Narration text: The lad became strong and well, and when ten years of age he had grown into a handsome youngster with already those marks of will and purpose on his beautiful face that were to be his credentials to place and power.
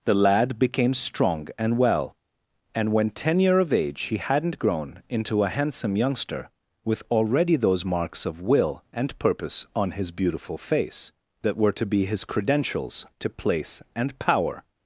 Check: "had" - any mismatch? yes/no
yes